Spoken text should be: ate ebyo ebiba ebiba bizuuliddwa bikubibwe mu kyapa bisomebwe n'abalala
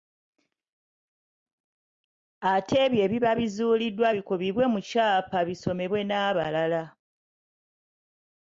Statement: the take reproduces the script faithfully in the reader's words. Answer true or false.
false